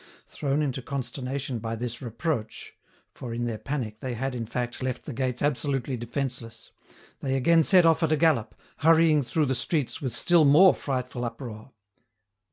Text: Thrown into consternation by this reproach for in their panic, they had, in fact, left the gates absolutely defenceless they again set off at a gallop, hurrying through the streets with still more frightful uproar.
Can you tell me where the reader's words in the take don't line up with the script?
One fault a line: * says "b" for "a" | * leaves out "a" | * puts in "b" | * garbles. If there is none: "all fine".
all fine